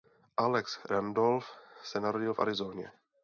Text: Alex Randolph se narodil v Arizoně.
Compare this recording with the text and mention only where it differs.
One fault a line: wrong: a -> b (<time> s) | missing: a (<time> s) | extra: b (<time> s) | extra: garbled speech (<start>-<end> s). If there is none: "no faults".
no faults